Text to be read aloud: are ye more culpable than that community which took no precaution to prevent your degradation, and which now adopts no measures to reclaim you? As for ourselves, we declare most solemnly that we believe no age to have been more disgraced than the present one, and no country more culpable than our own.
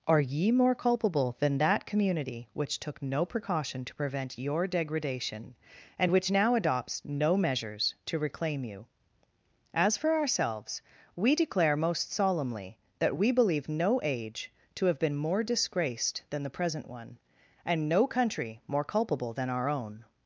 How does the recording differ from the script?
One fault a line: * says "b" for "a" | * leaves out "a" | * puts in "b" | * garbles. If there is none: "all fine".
all fine